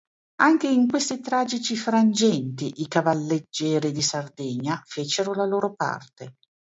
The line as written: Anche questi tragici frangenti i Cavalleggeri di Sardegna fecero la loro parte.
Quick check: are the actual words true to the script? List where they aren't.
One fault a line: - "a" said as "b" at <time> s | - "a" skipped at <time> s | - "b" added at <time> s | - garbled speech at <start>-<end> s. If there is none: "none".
- "in" added at 0.7 s